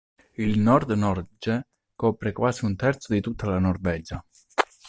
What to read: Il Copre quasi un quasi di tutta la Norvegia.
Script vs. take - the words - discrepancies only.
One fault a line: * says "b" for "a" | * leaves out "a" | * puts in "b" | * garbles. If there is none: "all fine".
* puts in "Nord Norge"
* says "terzo" for "quasi"